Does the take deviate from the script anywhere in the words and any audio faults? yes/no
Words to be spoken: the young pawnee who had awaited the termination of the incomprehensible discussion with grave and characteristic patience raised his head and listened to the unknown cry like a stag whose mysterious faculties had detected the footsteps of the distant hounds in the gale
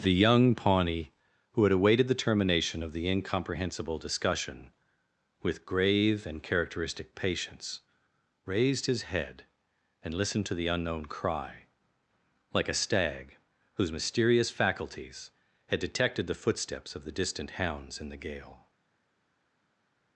no